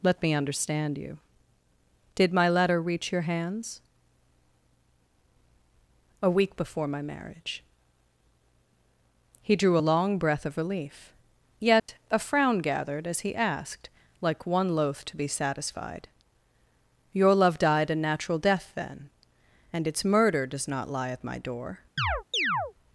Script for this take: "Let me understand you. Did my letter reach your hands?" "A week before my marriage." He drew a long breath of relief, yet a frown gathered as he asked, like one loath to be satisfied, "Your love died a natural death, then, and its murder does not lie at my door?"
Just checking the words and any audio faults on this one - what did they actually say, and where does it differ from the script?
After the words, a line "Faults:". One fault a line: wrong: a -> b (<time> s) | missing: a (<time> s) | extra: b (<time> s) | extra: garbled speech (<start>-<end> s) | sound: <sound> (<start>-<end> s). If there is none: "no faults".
"Let me understand you. Did my letter reach your hands?" "A week before my marriage." He drew a long breath of relief, yet a frown gathered as he asked, like one loath to be satisfied, "Your love died a natural death, then, and its murder does not lie at my door?"
Faults:
sound: dropout (11.8-11.9 s)
sound: chirp (22.0-22.7 s)